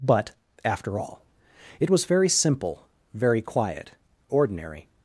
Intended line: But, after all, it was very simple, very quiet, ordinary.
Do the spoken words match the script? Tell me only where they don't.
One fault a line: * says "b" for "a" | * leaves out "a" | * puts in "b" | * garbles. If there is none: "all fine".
all fine